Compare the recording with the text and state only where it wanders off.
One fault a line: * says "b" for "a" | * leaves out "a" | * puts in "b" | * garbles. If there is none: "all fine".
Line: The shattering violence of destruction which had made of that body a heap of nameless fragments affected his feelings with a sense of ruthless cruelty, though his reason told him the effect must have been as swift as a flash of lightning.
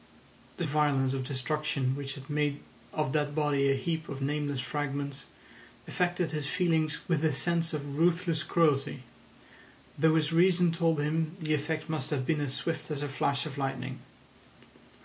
* leaves out "shattering"